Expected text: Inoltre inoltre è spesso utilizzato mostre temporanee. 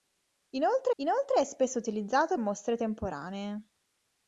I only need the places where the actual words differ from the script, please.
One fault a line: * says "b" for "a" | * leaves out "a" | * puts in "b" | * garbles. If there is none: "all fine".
all fine